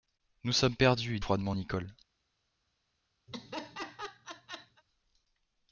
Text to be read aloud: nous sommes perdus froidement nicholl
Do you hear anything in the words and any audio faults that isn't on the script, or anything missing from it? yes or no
yes